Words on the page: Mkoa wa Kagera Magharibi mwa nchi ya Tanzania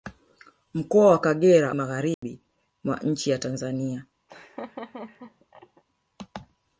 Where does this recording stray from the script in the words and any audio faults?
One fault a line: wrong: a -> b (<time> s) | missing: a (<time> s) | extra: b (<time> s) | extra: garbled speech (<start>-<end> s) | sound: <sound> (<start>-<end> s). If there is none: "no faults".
sound: dropout (2.1-2.2 s)
sound: laugh (4.3-5.8 s)